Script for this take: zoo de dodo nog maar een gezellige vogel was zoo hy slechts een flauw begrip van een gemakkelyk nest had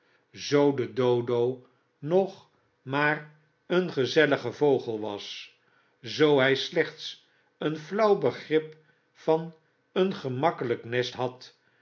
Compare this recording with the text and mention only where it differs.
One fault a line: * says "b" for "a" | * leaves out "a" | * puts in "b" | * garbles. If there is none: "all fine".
all fine